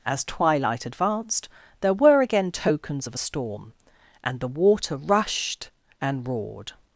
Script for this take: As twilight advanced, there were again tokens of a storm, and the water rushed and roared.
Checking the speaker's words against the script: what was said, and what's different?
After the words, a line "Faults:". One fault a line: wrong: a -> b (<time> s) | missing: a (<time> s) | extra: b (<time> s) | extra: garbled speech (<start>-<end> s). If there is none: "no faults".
As twilight advanced, there were again tokens of a storm, and the water rushed and roared.
Faults:
no faults